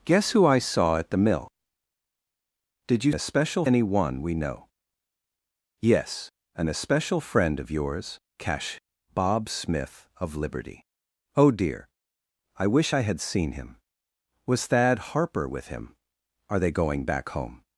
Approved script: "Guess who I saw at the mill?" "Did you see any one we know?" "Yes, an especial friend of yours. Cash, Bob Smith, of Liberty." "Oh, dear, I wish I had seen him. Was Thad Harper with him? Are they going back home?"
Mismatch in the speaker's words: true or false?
true